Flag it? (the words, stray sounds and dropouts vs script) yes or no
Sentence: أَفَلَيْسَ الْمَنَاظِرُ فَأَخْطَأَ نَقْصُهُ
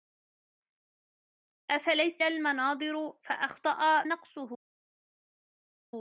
no